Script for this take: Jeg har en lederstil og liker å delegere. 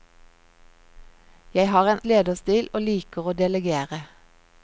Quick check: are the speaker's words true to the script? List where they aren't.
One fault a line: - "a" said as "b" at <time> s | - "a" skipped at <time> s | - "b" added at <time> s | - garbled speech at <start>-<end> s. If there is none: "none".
none